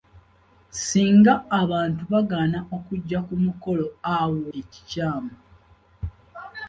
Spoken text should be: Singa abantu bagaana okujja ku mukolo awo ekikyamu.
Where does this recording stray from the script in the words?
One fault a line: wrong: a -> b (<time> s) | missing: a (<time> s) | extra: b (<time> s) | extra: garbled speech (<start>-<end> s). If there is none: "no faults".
no faults